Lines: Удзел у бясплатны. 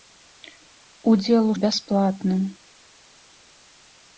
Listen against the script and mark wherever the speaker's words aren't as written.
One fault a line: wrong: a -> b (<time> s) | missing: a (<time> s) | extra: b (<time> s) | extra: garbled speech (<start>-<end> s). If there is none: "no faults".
no faults